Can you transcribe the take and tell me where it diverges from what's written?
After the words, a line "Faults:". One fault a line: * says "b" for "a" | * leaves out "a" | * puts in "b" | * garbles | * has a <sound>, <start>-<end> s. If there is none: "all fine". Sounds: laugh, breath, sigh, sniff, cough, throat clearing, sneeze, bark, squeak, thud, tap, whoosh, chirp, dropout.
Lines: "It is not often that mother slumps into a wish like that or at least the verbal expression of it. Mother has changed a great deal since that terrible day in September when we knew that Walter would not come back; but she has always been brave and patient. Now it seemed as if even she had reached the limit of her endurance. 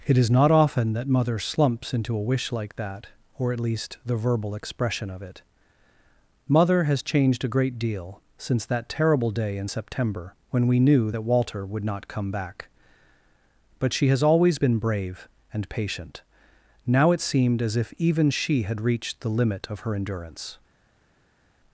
"It is not often that mother slumps into a wish like that or at least the verbal expression of it. Mother has changed a great deal since that terrible day in September when we knew that Walter would not come back; but she has always been brave and patient. Now it seemed as if even she had reached the limit of her endurance.
Faults:
all fine